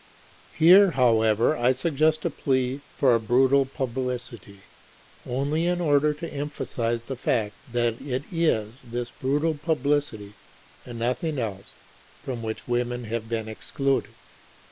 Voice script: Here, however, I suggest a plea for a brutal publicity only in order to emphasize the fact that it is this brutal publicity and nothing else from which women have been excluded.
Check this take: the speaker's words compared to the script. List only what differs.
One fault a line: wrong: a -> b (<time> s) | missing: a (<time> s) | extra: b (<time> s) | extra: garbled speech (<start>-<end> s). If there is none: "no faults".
no faults